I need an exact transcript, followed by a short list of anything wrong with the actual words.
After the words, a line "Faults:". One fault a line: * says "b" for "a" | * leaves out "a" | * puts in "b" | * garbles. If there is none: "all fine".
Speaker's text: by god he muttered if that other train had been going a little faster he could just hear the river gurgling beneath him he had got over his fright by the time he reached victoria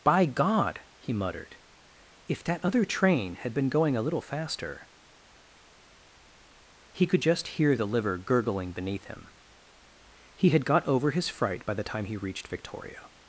by god he muttered if that other train had been going a little faster he could just hear the liver gurgling beneath him he had got over his fright by the time he reached victoria
Faults:
* says "liver" for "river"